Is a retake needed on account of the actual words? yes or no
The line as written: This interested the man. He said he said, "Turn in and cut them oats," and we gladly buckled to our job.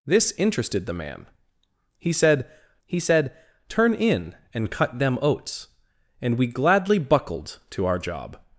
no